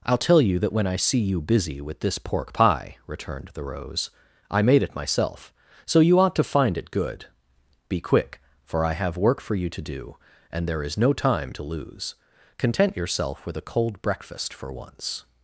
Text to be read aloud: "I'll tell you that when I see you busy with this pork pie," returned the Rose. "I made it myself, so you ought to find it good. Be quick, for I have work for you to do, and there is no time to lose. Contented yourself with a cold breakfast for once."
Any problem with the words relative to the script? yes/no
yes